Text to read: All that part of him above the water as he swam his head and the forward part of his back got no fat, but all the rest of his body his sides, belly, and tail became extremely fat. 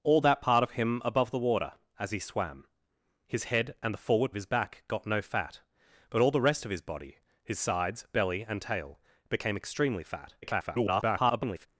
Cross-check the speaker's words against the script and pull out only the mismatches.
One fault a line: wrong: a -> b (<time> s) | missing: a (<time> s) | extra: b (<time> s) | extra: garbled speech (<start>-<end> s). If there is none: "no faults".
missing: part (4.3 s)
extra: garbled speech (10.4-11.7 s)